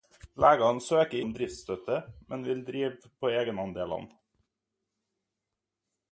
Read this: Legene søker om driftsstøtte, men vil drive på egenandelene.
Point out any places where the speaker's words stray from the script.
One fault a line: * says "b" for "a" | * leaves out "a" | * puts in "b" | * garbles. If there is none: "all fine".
all fine